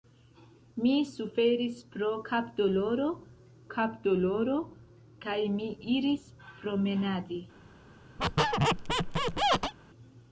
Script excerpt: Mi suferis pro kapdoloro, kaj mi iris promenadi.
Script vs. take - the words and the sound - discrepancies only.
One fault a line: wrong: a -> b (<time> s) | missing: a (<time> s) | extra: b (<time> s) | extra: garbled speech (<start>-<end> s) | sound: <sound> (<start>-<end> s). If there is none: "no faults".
extra: kapdoloro (3.8 s)
sound: squeak (8.2-9.7 s)